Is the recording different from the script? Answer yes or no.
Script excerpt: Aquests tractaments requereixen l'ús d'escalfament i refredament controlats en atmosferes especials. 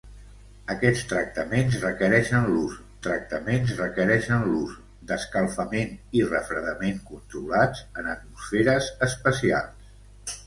yes